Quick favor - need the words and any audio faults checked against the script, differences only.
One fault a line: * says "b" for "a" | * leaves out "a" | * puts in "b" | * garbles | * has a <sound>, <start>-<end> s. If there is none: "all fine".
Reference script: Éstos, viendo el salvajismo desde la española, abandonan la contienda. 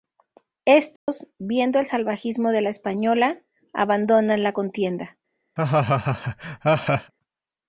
* has a dropout, 1.0-1.1 s
* says "de" for "desde"
* has a laugh, 5.6-7.1 s